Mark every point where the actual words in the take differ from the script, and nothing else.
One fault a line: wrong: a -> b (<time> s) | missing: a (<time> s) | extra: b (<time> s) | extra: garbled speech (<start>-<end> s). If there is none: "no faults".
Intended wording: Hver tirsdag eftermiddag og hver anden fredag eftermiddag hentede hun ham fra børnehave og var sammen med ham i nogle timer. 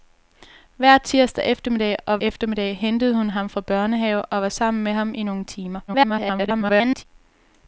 missing: hver anden fredag (2.2 s)
extra: garbled speech (5.9-7.1 s)